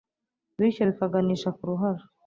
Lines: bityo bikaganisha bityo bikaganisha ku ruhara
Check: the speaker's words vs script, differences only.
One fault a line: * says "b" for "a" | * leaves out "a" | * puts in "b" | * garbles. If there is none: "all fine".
* leaves out "bityo bikaganisha"